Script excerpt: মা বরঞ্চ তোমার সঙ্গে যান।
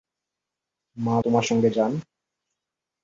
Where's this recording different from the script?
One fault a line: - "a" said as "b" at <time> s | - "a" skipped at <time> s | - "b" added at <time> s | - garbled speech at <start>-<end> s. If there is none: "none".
- "বরঞ্চ" skipped at 1.1 s